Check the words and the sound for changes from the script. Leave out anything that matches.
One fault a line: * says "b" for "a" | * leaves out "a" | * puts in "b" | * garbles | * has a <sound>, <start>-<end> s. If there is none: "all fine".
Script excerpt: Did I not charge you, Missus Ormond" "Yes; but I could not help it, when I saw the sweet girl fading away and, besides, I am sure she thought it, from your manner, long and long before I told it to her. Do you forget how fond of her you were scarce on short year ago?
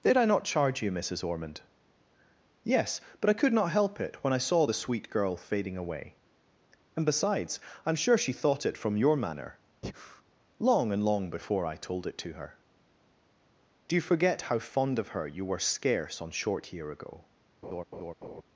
* has a breath, 9.8-10.2 s
* has a laugh, 17.6-18.4 s